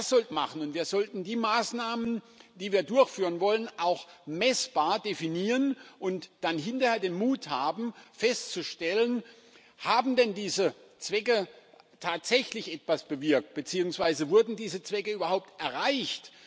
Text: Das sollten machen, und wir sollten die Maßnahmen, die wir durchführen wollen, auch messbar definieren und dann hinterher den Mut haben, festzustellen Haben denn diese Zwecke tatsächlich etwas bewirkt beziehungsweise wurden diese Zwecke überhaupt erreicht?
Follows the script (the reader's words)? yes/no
yes